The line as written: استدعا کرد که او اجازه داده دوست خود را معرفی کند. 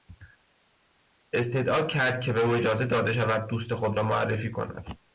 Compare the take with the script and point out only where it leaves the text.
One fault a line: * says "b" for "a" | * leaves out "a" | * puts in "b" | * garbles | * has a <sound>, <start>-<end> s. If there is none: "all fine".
* puts in "به"
* puts in "شود"